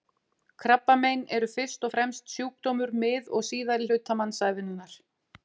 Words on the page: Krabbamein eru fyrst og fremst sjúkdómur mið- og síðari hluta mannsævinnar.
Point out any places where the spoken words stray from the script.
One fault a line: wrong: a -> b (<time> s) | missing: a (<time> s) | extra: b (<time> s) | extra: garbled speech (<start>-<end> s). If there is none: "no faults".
no faults